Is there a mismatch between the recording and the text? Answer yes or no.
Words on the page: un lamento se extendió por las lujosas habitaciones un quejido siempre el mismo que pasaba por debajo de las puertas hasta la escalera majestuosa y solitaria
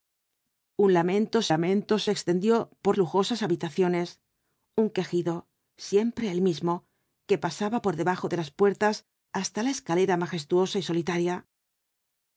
yes